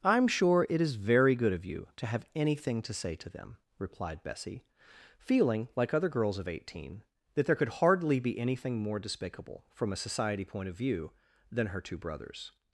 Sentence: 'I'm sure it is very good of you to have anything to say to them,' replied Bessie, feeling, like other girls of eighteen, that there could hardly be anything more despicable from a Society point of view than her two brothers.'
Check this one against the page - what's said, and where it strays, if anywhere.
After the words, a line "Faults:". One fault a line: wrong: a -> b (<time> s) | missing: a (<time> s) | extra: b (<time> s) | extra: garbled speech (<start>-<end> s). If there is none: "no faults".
'I'm sure it is very good of you to have anything to say to them,' replied Bessie, feeling, like other girls of eighteen, that there could hardly be anything more despicable from a Society point of view than her two brothers.'
Faults:
no faults